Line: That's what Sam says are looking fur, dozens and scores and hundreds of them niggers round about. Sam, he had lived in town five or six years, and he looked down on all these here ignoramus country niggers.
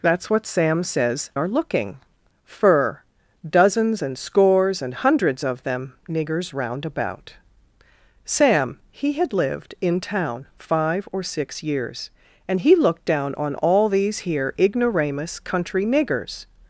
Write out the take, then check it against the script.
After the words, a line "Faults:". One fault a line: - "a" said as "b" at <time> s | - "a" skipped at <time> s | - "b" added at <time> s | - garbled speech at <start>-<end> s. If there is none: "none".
That's what Sam says are looking fur, dozens and scores and hundreds of them niggers round about. Sam, he had lived in town five or six years, and he looked down on all these here ignoramus country niggers.
Faults:
none